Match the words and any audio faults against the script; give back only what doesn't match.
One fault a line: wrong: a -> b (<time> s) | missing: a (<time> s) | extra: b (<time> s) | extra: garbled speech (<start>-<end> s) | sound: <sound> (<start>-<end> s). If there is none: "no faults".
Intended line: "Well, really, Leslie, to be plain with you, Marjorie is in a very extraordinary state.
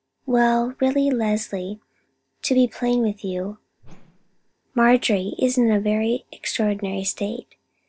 sound: whoosh (3.8-4.5 s)